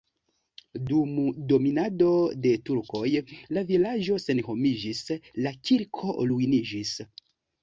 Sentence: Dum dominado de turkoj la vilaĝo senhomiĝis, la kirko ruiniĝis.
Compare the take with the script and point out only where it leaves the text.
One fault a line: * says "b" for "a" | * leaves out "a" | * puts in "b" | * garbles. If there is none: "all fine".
all fine